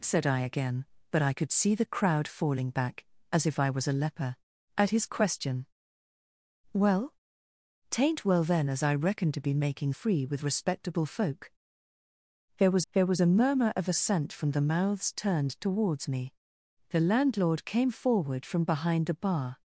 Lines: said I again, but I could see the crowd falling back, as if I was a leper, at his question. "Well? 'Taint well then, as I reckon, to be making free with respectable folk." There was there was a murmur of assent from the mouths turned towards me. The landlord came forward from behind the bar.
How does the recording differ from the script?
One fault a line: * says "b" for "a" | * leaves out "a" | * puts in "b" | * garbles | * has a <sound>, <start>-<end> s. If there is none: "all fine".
all fine